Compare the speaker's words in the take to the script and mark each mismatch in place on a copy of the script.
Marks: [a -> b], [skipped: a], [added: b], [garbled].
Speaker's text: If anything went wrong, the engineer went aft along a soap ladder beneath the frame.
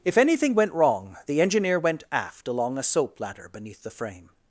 If anything went wrong, the engineer went aft along a soap ladder beneath the frame.